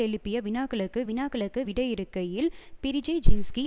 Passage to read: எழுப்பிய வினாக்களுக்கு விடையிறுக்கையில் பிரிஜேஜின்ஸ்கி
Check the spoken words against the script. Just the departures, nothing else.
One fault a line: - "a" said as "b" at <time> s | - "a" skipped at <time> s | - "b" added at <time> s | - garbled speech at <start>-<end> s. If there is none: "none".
- "வினாக்களுக்கு" added at 1.0 s